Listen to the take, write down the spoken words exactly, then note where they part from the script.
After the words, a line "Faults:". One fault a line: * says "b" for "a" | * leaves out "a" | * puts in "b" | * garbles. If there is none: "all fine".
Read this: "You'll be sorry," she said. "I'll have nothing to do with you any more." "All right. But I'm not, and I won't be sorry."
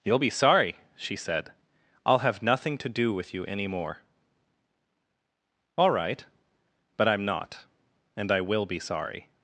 "You'll be sorry," she said. "I'll have nothing to do with you any more." "All right. But I'm not, and I will be sorry."
Faults:
* says "will" for "won't"